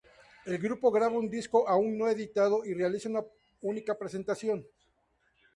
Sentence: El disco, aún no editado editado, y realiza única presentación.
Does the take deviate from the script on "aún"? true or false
false